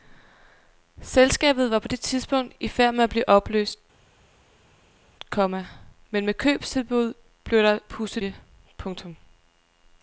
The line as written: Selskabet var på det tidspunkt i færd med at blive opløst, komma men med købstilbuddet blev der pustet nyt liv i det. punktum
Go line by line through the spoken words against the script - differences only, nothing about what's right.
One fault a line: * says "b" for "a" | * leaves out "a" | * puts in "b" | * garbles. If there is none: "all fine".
* leaves out "nyt liv i"